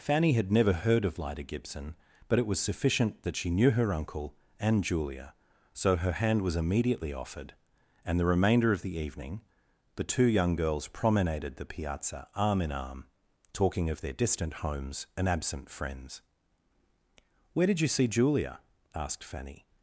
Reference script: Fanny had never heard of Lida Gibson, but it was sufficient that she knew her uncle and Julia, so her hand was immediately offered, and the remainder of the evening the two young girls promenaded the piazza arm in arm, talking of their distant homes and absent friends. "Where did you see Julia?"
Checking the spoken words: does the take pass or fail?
fail